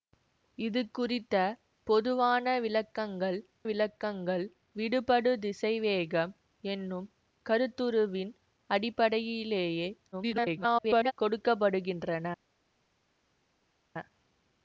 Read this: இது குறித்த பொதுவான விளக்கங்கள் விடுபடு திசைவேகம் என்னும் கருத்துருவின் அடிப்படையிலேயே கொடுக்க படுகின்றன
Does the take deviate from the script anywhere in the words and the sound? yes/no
yes